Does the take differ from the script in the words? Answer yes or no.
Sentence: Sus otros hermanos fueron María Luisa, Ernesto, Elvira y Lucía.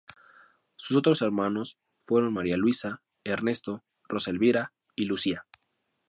yes